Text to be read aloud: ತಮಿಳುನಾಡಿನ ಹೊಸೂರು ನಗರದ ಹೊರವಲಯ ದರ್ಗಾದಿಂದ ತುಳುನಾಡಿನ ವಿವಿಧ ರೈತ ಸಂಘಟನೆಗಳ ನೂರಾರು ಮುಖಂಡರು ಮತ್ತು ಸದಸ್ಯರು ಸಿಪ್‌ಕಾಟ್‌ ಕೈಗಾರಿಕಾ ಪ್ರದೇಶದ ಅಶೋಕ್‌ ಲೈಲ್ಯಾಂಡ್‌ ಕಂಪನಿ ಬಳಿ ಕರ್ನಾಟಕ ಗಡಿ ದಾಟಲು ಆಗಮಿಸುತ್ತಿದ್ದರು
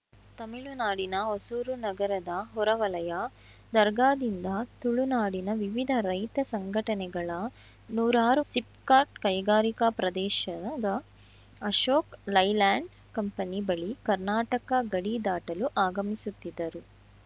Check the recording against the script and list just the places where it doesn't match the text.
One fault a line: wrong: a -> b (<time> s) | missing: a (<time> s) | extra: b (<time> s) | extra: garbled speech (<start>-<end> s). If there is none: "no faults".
missing: ಮುಖಂಡರು ಮತ್ತು ಸದಸ್ಯರು (8.4 s)